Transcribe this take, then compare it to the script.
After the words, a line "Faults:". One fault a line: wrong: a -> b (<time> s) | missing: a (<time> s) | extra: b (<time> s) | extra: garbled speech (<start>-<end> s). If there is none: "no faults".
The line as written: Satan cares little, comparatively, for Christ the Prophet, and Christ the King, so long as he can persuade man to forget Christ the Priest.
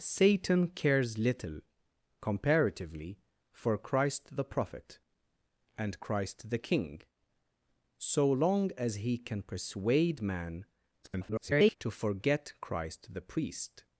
Satan cares little, comparatively, for Christ the Prophet, and Christ the King, so long as he can persuade man [garbled] to forget Christ the Priest.
Faults:
extra: garbled speech (11.0-11.8 s)